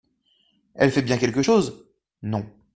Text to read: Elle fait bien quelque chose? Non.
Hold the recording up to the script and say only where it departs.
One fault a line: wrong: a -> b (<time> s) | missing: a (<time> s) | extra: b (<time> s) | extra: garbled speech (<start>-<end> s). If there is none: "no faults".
no faults